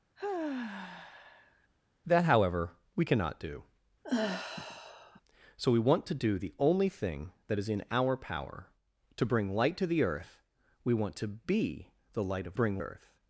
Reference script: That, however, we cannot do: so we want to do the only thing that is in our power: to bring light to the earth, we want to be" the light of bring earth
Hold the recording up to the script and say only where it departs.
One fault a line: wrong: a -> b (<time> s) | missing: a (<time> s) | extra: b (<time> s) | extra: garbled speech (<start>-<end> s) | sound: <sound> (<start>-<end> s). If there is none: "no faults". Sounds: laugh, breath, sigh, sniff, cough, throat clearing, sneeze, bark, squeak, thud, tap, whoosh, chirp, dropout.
sound: sigh (0.2-1.7 s)
sound: sigh (4.0-5.2 s)